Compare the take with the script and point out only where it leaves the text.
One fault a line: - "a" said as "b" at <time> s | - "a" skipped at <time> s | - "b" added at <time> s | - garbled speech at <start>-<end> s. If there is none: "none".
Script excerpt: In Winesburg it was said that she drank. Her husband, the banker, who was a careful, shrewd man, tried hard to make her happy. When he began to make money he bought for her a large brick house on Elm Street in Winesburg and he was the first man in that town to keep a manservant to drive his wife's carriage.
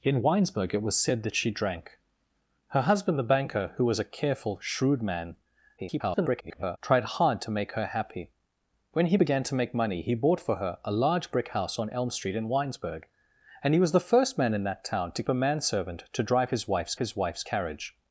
- garbled speech at 5.8-6.8 s
- "keep" skipped at 15.2 s
- "his wife's" added at 17.0 s